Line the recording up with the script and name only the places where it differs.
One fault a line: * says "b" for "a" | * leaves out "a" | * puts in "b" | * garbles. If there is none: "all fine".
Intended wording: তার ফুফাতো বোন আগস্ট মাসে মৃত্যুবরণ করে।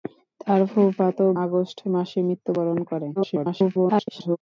* leaves out "বোন"
* garbles